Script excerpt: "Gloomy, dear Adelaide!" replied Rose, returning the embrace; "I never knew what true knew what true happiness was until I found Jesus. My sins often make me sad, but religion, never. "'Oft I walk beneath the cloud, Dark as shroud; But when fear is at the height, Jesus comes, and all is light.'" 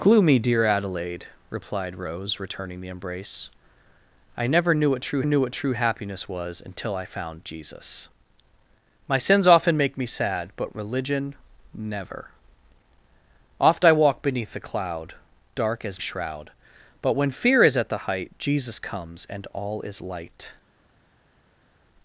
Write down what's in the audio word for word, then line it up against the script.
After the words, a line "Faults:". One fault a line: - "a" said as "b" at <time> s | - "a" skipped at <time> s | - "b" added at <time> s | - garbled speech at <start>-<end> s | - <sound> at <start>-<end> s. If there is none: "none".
"Gloomy, dear Adelaide!" replied Rose, returning the embrace; "I never knew what true knew what true happiness was until I found Jesus. My sins often make me sad, but religion, never. "'Oft I walk beneath the cloud, Dark as shroud; But when fear is at the height, Jesus comes, and all is light.'"
Faults:
none